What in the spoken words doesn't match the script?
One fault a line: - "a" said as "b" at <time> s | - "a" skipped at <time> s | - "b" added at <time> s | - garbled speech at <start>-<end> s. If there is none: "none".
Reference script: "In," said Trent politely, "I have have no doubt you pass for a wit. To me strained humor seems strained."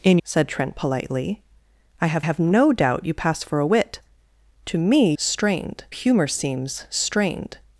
none